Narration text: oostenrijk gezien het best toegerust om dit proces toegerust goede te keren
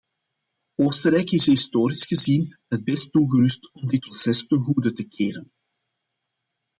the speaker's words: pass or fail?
fail